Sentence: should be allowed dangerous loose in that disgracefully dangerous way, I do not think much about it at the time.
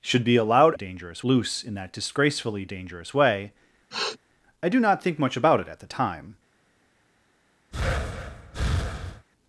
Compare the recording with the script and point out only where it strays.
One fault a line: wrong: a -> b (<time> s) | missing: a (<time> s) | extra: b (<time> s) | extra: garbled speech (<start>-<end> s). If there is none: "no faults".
no faults